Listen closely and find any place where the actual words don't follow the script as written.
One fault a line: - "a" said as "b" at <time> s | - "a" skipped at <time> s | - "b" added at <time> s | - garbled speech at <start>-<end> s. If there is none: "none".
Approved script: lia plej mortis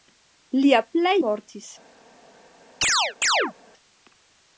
none